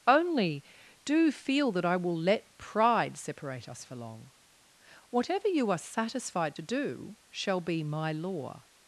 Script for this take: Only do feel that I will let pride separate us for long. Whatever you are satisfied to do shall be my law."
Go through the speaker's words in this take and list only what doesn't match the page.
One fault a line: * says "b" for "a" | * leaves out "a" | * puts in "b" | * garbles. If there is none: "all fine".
all fine